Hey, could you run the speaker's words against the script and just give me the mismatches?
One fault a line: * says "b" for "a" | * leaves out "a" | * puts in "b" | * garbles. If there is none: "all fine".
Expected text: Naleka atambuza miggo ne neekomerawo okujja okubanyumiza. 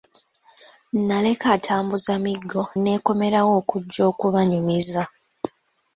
* leaves out "ne"